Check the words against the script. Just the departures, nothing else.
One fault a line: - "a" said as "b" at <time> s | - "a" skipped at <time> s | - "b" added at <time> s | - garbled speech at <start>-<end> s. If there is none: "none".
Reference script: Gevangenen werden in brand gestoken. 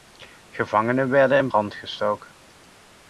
none